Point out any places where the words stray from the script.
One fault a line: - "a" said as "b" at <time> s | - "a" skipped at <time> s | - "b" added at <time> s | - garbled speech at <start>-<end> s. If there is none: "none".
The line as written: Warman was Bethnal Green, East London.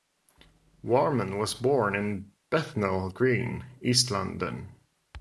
- "born in" added at 1.5 s